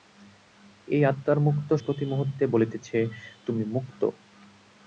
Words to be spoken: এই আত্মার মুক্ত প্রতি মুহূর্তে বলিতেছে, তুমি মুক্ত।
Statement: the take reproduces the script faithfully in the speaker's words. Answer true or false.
true